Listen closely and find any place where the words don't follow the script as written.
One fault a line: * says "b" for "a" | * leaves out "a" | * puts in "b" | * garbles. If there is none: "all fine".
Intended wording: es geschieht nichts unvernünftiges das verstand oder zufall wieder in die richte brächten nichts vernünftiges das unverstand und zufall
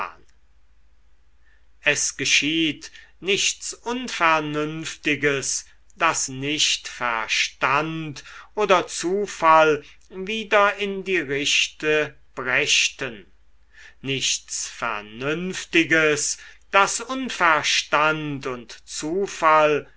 * puts in "nicht"